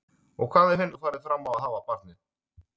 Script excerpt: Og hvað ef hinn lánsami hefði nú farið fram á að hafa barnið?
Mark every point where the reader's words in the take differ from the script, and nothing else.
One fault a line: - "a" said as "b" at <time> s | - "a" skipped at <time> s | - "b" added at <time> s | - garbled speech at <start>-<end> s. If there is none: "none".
- "lánsami hefði" skipped at 0.9 s